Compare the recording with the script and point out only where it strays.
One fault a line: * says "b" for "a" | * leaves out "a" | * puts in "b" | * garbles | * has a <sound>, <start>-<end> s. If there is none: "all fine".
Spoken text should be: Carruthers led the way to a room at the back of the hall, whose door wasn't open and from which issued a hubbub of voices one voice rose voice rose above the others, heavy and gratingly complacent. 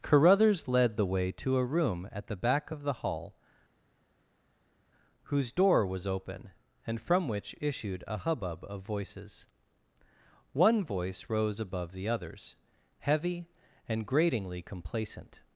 * says "was" for "wasn't"
* leaves out "voice rose"